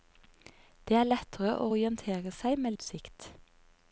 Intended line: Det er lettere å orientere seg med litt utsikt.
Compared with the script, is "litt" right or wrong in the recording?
wrong